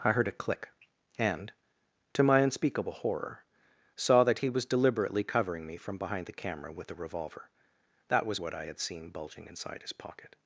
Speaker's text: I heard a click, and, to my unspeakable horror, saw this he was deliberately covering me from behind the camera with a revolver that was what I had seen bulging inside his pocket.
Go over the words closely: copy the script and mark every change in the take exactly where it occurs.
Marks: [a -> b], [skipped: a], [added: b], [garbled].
I heard a click, and, to my unspeakable horror, saw [this -> that] he was deliberately covering me from behind the camera with a revolver that was what I had seen bulging inside his pocket.